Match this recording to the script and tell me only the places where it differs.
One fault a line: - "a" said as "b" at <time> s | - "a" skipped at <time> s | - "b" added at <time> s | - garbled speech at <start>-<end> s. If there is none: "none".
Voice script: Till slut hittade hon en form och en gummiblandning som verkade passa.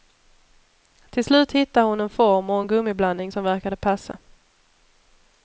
none